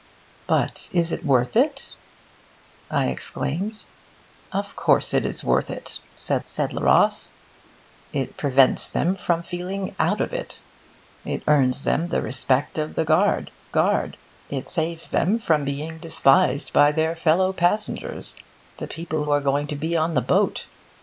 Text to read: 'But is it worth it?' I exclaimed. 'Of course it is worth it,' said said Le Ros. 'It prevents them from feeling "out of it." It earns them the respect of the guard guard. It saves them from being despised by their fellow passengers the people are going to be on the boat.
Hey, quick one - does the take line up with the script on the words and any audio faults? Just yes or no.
yes